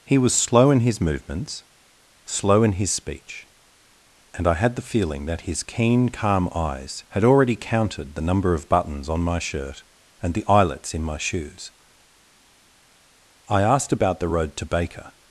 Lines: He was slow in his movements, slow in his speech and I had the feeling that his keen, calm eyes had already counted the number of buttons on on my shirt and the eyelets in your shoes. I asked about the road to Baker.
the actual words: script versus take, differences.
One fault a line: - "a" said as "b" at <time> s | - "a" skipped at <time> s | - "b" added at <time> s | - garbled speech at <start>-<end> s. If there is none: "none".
- "on" skipped at 9.2 s
- "your" said as "my" at 11.0 s